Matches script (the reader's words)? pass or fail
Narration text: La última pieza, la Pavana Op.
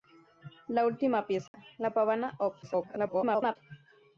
fail